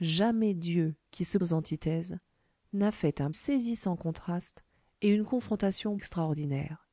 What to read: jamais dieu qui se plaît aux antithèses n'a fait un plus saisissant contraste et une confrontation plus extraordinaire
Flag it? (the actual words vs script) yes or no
yes